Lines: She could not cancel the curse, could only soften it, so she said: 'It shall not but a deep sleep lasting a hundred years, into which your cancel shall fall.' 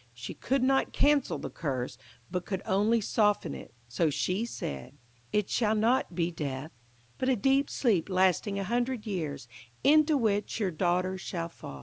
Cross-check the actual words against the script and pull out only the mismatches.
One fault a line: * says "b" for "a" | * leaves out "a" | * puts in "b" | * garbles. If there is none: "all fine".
* puts in "but"
* puts in "be death"
* says "daughter" for "cancel"